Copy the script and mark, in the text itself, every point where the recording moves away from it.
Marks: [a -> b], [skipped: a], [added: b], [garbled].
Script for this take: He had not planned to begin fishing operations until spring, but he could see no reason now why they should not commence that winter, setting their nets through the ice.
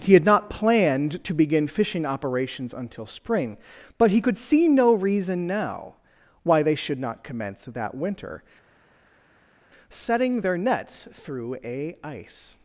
He had not planned to begin fishing operations until spring, but he could see no reason now why they should not commence that winter, setting their nets through [the -> a] ice.